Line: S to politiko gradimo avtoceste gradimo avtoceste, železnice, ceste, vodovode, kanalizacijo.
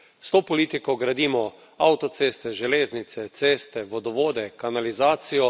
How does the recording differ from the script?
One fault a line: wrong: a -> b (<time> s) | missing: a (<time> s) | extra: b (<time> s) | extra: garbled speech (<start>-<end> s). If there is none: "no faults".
missing: gradimo avtoceste (2.5 s)